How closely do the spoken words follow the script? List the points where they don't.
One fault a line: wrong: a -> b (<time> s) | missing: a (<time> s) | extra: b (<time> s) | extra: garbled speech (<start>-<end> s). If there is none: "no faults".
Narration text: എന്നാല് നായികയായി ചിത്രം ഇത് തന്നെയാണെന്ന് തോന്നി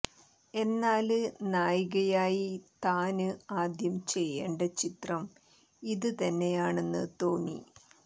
extra: താന് ആദ്യം ചെയ്യേണ്ട (2.9 s)